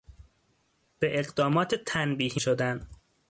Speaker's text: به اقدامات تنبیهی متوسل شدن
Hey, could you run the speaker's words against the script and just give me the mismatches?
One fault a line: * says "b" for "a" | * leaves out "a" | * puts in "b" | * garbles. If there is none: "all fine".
* leaves out "متوسل"